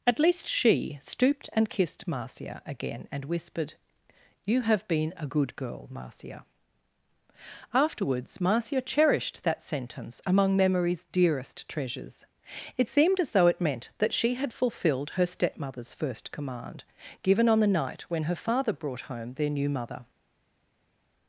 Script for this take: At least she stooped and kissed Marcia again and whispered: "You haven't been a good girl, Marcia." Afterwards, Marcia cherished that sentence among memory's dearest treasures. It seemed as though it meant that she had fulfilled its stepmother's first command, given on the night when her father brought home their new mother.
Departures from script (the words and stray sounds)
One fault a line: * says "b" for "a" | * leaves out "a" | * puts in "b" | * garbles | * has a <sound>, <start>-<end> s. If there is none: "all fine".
* says "have" for "haven't"
* says "her" for "its"